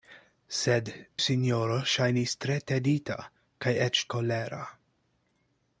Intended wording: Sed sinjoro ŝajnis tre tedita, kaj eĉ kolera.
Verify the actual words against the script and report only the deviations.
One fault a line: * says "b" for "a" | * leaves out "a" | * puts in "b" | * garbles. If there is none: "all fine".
all fine